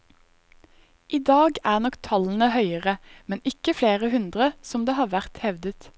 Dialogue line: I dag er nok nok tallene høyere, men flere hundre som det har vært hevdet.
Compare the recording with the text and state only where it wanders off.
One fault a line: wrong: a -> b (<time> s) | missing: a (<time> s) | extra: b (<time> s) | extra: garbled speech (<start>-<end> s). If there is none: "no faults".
missing: nok (2.0 s)
extra: ikke (3.5 s)